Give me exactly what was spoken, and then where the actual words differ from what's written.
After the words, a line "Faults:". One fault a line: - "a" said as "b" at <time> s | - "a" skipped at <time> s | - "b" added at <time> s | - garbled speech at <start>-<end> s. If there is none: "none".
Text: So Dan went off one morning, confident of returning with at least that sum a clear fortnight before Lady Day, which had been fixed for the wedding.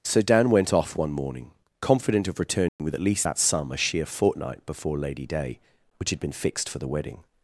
So Dan went off one morning, confident of returning with at least that sum a sheer fortnight before Lady Day, which had been fixed for the wedding.
Faults:
- "clear" said as "sheer" at 3.8 s